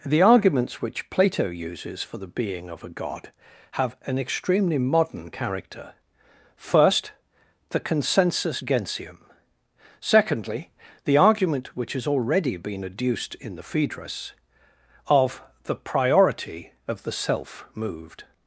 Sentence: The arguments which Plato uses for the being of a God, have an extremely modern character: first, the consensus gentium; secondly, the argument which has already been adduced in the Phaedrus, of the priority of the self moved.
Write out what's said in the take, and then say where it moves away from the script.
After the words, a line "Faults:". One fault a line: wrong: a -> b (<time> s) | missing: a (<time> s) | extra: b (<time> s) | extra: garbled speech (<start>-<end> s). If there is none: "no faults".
The arguments which Plato uses for the being of a God, have an extremely modern character: first, the consensus gentium; secondly, the argument which has already been adduced in the Phaedrus, of the priority of the self moved.
Faults:
no faults